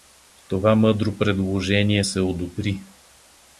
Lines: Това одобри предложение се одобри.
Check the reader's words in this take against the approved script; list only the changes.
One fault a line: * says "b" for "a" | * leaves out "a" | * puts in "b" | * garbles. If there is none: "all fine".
* says "мъдро" for "одобри"